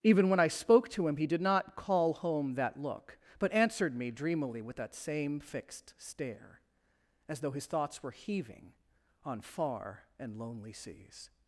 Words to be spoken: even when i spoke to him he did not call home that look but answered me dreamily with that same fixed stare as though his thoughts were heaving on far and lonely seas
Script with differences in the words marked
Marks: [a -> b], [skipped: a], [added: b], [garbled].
even when i spoke to him he did not call home that look but answered me dreamily with that same fixed stare as though his thoughts were heaving on far and lonely seas